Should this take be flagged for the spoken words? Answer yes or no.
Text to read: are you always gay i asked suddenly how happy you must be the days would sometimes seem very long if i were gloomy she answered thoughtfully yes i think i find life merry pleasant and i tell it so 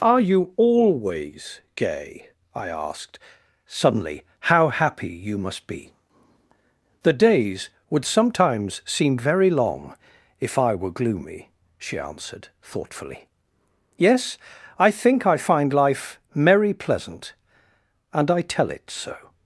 no